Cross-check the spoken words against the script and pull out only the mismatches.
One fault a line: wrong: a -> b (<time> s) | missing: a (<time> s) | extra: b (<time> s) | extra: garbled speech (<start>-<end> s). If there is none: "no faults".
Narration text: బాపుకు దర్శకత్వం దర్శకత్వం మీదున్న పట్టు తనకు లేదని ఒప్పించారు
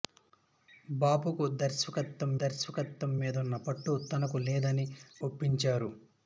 no faults